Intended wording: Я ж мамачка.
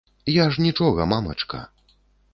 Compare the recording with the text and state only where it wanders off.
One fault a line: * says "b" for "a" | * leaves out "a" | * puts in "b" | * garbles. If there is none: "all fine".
* puts in "нічога"